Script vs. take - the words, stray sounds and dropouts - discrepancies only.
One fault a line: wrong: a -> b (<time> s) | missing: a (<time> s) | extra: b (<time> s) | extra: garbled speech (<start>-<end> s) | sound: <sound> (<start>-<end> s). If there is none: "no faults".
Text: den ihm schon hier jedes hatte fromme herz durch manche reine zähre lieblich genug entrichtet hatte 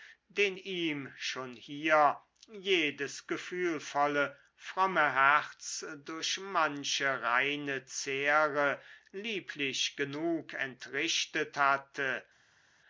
wrong: hatte -> gefühlvolle (3.3 s)